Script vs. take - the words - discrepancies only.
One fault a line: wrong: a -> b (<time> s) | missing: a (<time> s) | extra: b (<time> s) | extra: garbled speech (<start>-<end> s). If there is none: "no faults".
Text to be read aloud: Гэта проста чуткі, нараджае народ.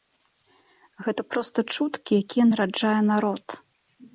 extra: якія (2.2 s)